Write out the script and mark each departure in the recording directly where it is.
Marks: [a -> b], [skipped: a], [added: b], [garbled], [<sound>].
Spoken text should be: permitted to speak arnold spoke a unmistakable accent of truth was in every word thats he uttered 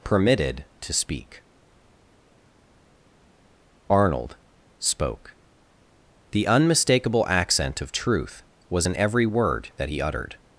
permitted to speak arnold spoke [a -> the] unmistakable accent of truth was in every word [thats -> that] he uttered